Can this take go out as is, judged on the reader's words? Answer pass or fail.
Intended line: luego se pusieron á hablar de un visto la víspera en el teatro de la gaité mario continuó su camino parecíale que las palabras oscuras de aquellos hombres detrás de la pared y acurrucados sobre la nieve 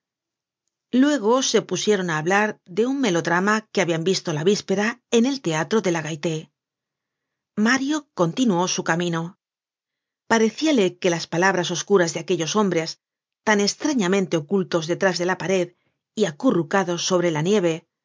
fail